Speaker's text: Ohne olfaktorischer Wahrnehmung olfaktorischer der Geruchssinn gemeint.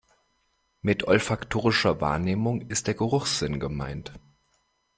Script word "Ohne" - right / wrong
wrong